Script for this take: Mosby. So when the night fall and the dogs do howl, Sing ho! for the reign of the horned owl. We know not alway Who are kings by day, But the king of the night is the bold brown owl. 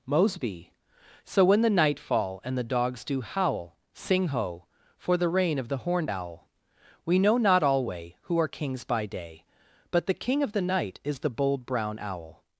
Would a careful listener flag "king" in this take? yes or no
no